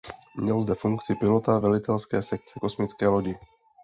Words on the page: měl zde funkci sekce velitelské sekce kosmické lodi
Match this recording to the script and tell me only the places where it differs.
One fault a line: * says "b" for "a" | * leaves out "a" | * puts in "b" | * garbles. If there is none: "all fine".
* says "pilota" for "sekce"